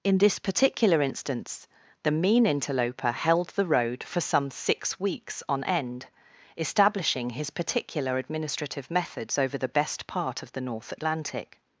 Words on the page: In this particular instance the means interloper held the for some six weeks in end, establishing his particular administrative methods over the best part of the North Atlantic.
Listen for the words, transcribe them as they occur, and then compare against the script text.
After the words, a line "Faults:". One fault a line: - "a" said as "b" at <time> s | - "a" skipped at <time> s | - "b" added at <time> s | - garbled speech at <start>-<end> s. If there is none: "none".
In this particular instance the mean interloper held the road for some six weeks on end, establishing his particular administrative methods over the best part of the North Atlantic.
Faults:
- "means" said as "mean" at 2.1 s
- "road" added at 3.7 s
- "in" said as "on" at 5.5 s